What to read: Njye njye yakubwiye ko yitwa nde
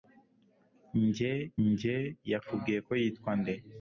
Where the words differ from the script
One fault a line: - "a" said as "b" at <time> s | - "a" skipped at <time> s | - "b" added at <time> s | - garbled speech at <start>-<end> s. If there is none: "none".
none